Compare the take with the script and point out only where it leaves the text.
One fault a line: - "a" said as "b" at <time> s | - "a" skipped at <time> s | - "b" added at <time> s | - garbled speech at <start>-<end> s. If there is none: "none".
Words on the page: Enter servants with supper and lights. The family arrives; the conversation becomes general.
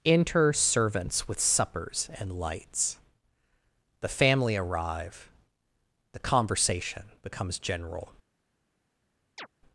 - "supper" said as "suppers" at 1.4 s
- "arrives" said as "arrive" at 4.5 s